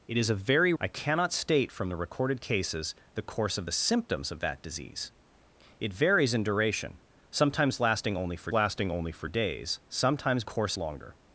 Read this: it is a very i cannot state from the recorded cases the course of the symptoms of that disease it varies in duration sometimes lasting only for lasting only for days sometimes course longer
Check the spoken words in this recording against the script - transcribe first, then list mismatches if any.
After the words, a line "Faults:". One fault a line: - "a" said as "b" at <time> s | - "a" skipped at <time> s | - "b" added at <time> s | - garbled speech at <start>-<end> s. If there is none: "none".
it is a very i cannot state from the recorded cases the course of the symptoms of that disease it varies in duration sometimes lasting only for lasting only for days sometimes course longer
Faults:
none